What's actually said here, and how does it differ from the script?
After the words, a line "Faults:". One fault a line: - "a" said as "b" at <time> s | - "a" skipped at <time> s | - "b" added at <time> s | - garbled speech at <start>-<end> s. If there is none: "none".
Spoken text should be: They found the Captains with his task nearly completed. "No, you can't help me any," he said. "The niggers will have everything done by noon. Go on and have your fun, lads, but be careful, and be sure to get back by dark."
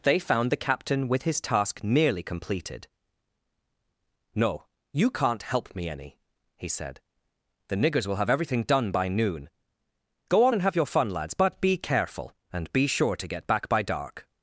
They found the Captain with his task nearly completed. "No, you can't help me any," he said. "The niggers will have everything done by noon. Go on and have your fun, lads, but be careful, and be sure to get back by dark."
Faults:
- "Captains" said as "Captain" at 0.6 s